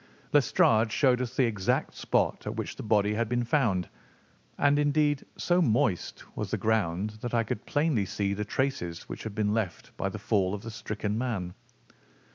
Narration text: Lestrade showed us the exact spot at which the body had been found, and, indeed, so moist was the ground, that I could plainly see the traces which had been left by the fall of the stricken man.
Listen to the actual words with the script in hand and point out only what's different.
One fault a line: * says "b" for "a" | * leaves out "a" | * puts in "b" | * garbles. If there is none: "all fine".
all fine